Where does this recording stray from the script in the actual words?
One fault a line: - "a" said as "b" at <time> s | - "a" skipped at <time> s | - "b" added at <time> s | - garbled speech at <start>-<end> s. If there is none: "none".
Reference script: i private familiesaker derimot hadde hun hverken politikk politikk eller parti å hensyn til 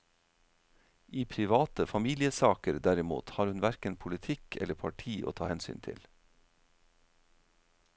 - "hadde" said as "har" at 3.3 s
- "politikk" skipped at 4.6 s
- "ta" added at 5.3 s